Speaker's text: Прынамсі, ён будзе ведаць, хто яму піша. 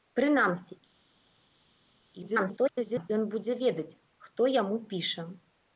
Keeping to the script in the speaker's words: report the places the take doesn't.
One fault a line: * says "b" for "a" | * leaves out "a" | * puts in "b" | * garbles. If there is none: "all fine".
* garbles